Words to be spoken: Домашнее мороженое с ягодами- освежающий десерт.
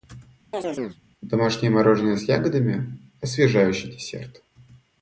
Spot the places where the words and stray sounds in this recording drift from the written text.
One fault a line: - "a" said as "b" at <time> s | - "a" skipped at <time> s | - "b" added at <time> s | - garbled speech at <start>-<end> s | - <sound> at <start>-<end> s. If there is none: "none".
- chirp at 0.5-1.0 s